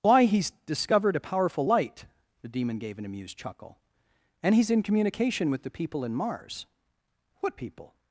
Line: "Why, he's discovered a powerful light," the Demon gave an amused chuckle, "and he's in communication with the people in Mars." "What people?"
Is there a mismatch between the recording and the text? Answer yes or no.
no